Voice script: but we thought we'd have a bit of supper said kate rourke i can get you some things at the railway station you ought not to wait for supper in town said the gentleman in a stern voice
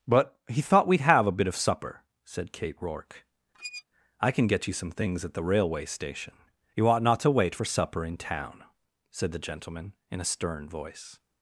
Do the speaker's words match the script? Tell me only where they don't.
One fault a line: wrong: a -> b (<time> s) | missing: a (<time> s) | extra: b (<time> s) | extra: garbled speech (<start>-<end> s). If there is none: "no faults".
wrong: we -> he (0.5 s)